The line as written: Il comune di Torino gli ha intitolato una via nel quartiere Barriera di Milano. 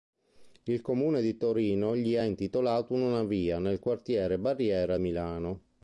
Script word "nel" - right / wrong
right